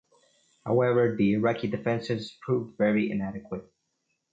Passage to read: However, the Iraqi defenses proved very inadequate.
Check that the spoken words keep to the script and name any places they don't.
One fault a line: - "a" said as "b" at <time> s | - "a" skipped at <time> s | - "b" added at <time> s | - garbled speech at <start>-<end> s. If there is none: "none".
none